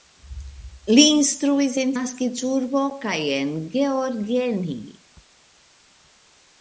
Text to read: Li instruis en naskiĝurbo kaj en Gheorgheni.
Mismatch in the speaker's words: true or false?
false